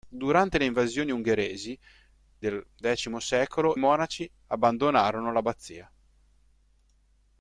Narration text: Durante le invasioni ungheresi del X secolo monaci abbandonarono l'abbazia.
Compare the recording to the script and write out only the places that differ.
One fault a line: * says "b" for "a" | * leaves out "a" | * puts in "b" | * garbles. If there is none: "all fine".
all fine